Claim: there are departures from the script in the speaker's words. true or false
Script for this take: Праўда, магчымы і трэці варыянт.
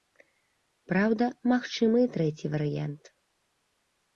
false